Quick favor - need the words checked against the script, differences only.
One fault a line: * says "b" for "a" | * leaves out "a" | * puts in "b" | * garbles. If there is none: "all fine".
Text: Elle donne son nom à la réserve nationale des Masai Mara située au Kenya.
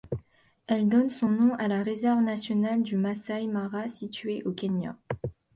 * says "du" for "des"